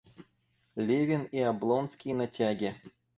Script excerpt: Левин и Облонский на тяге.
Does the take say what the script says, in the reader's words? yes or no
yes